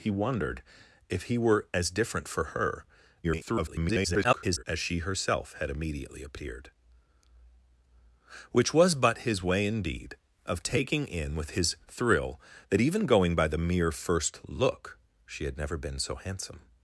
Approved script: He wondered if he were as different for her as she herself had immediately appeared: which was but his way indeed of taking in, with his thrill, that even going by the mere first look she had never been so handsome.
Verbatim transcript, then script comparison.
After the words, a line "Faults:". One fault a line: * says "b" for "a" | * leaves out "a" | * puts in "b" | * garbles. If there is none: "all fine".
He wondered if he were as different for her [garbled] as she herself had immediately appeared: which was but his way indeed of taking in, with his thrill, that even going by the mere first look she had never been so handsome.
Faults:
* garbles